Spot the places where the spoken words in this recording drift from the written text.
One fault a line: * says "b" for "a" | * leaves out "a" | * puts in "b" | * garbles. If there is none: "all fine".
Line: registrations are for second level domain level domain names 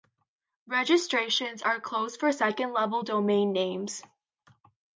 * puts in "closed"
* leaves out "level domain"